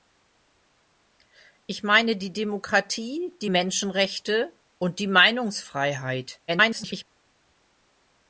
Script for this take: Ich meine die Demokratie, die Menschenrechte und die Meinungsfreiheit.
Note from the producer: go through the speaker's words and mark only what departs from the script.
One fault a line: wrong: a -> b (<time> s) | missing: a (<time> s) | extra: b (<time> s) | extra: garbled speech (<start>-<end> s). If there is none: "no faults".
extra: garbled speech (6.5-7.0 s)